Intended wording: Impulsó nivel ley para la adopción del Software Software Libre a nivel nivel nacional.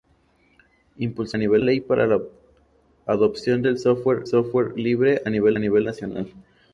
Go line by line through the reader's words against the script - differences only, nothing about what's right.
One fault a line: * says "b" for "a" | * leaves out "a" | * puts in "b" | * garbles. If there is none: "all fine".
all fine